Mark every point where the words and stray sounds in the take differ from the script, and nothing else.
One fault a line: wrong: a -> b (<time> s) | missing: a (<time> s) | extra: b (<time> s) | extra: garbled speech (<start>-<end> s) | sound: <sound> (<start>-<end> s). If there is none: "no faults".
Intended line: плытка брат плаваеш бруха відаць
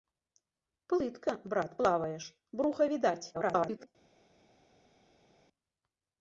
extra: garbled speech (3.3-3.9 s)